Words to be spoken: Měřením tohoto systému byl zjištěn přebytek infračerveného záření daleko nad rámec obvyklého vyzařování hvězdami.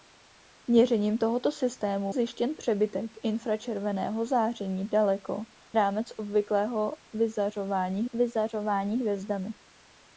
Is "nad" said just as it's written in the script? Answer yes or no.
no